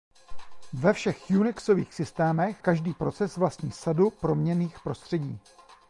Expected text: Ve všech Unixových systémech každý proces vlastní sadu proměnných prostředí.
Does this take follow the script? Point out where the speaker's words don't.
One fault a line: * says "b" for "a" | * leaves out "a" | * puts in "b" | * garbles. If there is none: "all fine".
all fine